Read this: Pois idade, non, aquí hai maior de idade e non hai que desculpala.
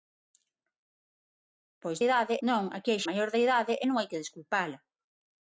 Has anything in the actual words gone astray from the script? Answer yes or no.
no